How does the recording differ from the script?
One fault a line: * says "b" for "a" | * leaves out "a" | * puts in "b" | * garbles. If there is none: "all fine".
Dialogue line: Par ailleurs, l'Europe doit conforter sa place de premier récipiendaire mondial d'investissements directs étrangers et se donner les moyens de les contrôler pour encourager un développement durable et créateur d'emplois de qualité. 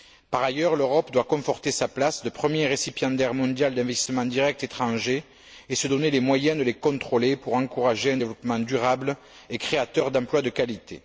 all fine